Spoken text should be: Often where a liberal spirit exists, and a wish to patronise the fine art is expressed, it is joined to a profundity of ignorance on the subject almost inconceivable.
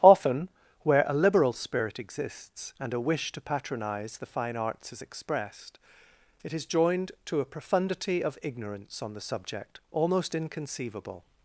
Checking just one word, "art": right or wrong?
wrong